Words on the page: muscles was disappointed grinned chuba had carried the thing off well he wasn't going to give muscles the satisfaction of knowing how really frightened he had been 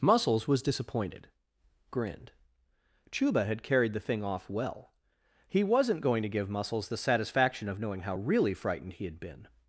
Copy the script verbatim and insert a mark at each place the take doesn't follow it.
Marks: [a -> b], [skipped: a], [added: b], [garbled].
muscles was disappointed grinned chuba had carried the thing off well he wasn't going to give muscles the satisfaction of knowing how really frightened he had been